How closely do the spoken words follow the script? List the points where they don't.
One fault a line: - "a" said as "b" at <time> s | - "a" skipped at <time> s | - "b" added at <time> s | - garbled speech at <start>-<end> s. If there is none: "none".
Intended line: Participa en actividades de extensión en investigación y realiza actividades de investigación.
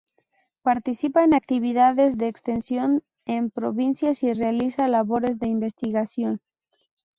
- "investigación" said as "provincias" at 3.5 s
- "actividades" said as "labores" at 4.9 s